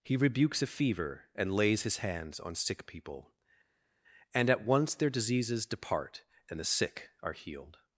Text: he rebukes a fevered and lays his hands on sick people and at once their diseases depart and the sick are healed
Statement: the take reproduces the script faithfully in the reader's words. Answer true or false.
false